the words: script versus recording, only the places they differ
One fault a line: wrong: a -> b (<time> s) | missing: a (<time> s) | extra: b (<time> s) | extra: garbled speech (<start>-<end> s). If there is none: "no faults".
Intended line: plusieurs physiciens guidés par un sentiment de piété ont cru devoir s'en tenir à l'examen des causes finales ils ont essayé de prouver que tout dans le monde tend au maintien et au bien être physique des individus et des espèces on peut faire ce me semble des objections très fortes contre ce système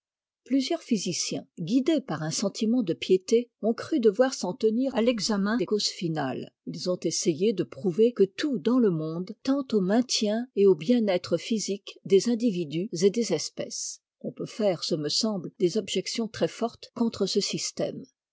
no faults